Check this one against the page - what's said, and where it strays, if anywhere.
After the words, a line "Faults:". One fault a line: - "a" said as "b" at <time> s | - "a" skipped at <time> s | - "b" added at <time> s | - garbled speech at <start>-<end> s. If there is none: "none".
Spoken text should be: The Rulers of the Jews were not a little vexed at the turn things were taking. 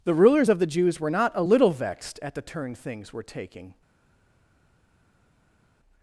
The Rulers of the Jews were not a little vexed at the turn things were taking.
Faults:
none